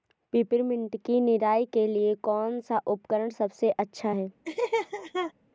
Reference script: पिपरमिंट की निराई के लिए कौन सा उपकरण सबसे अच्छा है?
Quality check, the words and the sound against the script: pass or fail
fail